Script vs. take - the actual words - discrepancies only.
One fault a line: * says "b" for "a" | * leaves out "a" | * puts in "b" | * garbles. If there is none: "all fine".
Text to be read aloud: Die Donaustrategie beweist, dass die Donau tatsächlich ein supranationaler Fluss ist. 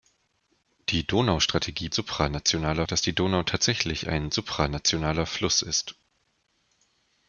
* says "supranationaler" for "beweist"